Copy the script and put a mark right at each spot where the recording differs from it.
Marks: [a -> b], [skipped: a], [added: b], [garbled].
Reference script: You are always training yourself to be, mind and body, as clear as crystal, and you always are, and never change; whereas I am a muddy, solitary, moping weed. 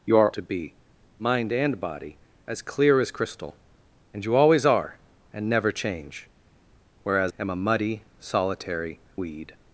You are [skipped: always training yourself] to be, mind and body, as clear as crystal, and you always are, and never change; whereas [skipped: I] am a muddy, solitary, [skipped: moping] weed.